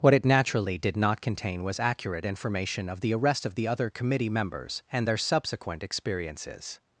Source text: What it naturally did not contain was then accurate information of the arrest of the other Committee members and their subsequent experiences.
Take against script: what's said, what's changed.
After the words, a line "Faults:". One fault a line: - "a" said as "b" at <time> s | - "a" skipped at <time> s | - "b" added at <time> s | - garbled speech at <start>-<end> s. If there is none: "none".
What it naturally did not contain was accurate information of the arrest of the other Committee members and their subsequent experiences.
Faults:
- "then" skipped at 1.8 s